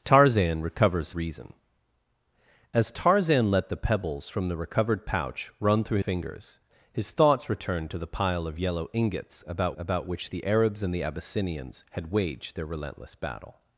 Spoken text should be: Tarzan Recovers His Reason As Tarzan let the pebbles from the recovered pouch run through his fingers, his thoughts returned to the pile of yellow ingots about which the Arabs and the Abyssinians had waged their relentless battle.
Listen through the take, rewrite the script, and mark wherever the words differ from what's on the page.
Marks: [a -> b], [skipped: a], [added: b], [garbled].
Tarzan Recovers [skipped: His] Reason As Tarzan let the pebbles from the recovered pouch run through [skipped: his] fingers, his thoughts returned to the pile of yellow ingots about [added: about] which the Arabs and the Abyssinians had waged their relentless battle.